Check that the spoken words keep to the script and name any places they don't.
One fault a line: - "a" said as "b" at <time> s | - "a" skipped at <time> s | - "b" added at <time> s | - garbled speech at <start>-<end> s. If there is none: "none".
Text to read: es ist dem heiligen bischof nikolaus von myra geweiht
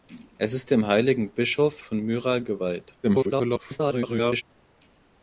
- "nikolaus" skipped at 1.8 s
- garbled speech at 3.0-4.4 s